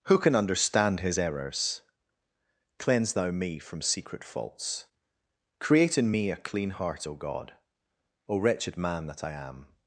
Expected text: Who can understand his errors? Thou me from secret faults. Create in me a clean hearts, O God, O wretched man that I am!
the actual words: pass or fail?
fail